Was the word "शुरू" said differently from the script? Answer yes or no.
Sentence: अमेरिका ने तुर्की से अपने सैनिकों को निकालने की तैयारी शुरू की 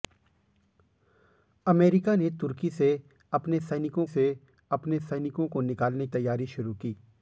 no